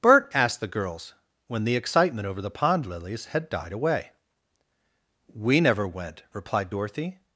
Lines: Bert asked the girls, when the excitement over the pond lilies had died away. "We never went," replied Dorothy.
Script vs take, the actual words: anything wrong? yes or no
no